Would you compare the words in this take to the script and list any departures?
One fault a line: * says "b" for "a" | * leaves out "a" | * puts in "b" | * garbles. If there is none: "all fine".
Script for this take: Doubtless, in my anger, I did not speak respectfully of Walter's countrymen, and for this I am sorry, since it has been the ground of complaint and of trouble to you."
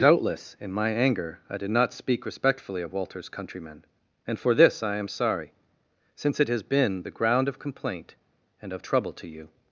all fine